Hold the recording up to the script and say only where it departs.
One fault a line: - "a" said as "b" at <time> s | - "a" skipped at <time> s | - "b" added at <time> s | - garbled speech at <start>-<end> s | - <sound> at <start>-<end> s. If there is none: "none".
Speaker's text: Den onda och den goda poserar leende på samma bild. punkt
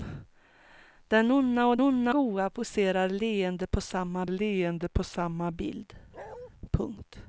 - "den" said as "onda" at 1.8 s
- "leende på samma" added at 4.3 s
- bark at 6.1-6.5 s